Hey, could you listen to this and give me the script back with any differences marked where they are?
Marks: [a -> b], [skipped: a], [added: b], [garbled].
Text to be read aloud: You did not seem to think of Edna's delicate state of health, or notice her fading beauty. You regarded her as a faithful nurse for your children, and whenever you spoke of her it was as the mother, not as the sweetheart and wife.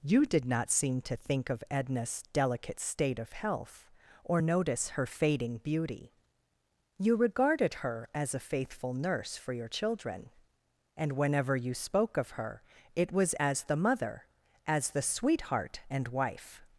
You did not seem to think of Edna's delicate state of health, or notice her fading beauty. You regarded her as a faithful nurse for your children, and whenever you spoke of her it was as the mother, [skipped: not] as the sweetheart and wife.